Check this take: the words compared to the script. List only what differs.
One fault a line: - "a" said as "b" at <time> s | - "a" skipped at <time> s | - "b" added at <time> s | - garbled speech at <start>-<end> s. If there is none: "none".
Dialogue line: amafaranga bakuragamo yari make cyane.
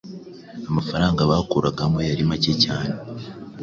none